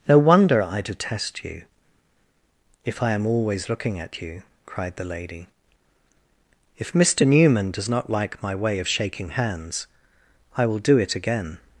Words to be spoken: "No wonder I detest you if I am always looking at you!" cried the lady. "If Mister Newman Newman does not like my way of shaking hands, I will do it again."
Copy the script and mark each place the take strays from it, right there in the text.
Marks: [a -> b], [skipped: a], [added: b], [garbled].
"No wonder I detest you if I am always looking at you!" cried the lady. "If Mister Newman [skipped: Newman] does not like my way of shaking hands, I will do it again."